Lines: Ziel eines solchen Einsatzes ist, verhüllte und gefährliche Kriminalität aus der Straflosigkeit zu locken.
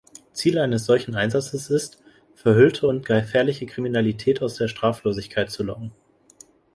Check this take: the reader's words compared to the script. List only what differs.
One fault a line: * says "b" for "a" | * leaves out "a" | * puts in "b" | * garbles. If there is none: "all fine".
all fine